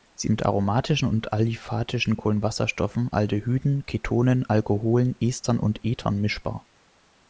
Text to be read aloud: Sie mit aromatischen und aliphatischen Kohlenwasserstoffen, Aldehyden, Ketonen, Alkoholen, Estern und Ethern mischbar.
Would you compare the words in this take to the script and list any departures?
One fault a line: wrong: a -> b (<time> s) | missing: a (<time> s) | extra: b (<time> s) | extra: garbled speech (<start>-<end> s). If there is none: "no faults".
no faults